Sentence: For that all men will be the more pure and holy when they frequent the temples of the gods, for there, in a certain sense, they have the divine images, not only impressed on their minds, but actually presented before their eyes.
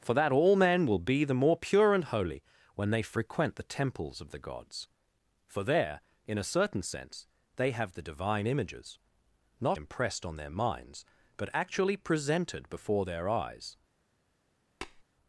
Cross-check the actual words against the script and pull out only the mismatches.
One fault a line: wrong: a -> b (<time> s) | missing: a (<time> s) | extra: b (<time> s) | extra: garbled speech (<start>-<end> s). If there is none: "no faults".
missing: only (9.8 s)